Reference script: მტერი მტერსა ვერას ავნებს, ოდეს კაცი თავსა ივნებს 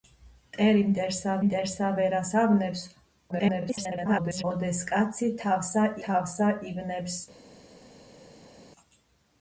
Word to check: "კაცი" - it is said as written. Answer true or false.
true